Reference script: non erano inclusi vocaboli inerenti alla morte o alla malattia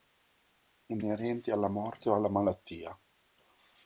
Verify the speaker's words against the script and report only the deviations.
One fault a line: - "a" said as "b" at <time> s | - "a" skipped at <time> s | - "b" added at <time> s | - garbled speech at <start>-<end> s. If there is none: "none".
- "erano inclusi vocaboli" skipped at 1.0 s